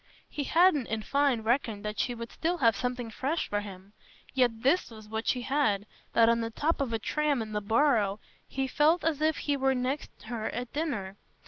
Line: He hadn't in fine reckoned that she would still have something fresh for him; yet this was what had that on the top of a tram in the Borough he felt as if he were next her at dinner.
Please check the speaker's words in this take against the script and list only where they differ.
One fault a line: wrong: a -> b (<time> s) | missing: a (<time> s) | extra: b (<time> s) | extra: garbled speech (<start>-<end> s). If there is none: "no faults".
extra: she (5.3 s)